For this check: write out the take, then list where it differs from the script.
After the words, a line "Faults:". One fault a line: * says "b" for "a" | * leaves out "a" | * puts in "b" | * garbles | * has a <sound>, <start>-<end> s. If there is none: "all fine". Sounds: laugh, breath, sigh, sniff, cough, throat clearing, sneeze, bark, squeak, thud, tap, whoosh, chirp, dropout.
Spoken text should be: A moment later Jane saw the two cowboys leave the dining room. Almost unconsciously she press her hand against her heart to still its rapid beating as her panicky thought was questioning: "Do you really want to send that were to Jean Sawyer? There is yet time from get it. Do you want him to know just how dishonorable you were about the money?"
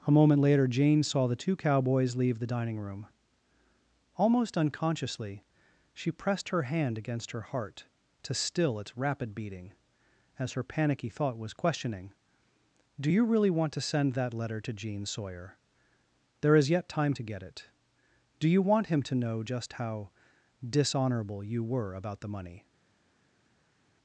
A moment later Jane saw the two cowboys leave the dining room. Almost unconsciously she pressed her hand against her heart to still its rapid beating as her panicky thought was questioning: "Do you really want to send that letter to Jean Sawyer? There is yet time to get it. Do you want him to know just how dishonorable you were about the money?"
Faults:
* says "pressed" for "press"
* says "letter" for "were"
* says "to" for "from"